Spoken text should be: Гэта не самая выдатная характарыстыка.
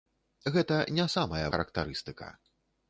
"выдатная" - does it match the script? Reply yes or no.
no